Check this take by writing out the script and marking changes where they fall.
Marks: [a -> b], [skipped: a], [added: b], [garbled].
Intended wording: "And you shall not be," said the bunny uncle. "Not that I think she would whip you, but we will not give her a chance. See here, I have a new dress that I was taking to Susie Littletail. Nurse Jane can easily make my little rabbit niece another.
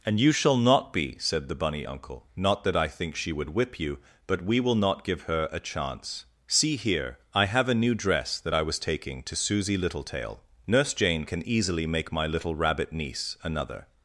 "And you shall not be," said the bunny uncle. "Not that I think she would whip you, but we will not give her a chance. See here, I have a new dress that I was taking to Susie Littletail. Nurse Jane can easily make my little rabbit niece another.